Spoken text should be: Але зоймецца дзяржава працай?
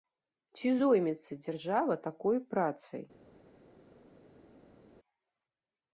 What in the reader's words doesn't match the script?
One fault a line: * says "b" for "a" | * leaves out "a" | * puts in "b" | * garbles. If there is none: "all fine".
* says "Ці" for "Але"
* puts in "такой"